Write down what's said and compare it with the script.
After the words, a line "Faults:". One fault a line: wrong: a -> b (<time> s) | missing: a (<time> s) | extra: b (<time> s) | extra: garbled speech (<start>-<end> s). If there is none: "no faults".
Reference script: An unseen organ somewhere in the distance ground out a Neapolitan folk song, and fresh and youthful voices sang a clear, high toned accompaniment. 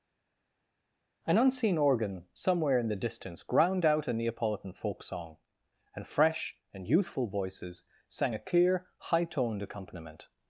An unseen organ somewhere in the distance ground out a Neapolitan folk song, and fresh and youthful voices sang a clear, high toned accompaniment.
Faults:
no faults